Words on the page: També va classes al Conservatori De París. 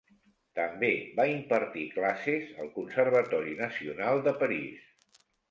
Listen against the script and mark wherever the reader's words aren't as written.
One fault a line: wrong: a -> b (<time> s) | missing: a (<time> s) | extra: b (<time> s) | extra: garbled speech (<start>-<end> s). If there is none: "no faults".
extra: impartir (1.3 s)
extra: Nacional (3.6 s)